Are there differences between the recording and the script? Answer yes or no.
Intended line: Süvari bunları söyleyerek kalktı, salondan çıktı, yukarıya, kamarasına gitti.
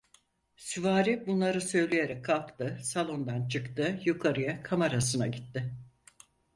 no